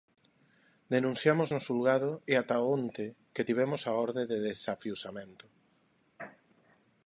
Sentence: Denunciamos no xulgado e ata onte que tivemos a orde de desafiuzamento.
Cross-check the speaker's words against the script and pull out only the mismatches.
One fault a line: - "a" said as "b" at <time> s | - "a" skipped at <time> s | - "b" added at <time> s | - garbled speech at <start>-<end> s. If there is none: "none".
none